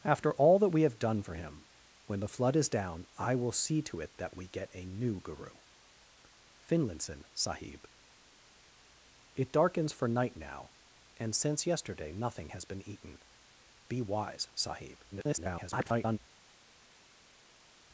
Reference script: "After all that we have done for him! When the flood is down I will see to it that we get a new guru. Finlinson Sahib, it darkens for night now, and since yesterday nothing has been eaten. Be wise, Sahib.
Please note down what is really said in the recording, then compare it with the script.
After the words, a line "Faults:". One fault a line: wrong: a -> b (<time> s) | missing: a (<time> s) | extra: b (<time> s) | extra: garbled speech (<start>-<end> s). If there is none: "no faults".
"After all that we have done for him! When the flood is down I will see to it that we get a new guru. Finlinson Sahib, it darkens for night now, and since yesterday nothing has been eaten. Be wise, Sahib. [garbled]
Faults:
extra: garbled speech (15.1-16.2 s)